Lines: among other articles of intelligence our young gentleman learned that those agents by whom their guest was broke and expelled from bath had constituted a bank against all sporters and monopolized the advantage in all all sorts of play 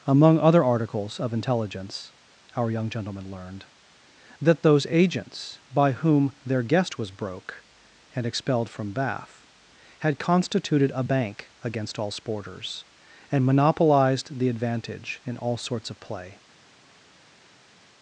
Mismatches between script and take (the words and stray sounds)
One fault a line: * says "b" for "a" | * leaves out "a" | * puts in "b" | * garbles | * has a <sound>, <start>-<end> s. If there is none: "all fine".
* leaves out "all"